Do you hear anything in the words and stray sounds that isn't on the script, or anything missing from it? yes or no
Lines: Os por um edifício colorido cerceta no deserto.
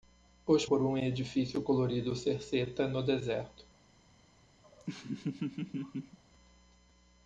yes